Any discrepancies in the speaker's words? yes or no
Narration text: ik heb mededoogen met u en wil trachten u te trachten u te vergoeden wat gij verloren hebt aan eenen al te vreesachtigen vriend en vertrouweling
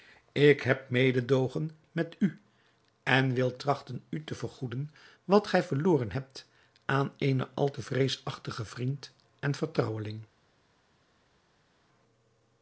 yes